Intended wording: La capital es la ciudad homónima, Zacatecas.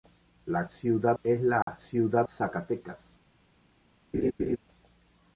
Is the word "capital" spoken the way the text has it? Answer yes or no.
no